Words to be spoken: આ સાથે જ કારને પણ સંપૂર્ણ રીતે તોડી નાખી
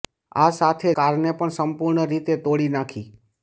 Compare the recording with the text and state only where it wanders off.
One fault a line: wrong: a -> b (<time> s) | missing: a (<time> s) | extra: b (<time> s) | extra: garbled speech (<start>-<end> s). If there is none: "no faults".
missing: જ (0.9 s)